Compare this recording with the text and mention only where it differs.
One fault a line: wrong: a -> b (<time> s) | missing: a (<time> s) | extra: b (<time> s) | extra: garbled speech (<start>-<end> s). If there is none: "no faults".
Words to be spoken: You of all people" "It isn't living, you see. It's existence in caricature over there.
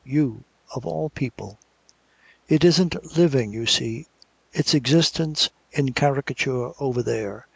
no faults